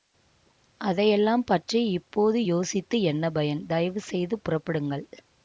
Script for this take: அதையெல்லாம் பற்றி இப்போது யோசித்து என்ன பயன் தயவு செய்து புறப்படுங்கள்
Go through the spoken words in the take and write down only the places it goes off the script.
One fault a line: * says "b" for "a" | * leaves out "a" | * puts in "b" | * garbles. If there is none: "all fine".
all fine